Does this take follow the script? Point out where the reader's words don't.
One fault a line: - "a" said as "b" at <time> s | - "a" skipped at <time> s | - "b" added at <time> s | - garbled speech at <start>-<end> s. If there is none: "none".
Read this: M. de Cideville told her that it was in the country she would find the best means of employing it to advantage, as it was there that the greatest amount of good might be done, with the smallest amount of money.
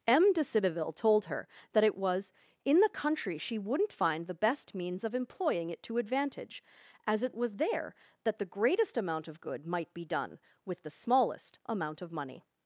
- "would" said as "wouldn't" at 3.6 s